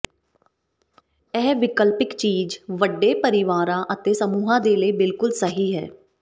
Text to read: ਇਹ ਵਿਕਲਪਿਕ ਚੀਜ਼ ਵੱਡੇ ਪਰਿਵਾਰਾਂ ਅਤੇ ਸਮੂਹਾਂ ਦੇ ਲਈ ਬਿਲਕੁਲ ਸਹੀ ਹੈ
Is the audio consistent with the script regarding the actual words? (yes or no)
yes